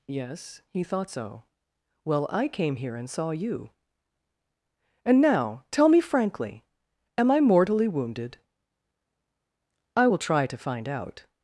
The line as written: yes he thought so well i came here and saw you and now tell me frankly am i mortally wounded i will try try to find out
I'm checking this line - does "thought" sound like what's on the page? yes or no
yes